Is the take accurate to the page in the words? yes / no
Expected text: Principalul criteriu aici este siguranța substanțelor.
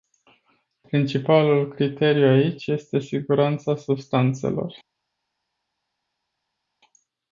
yes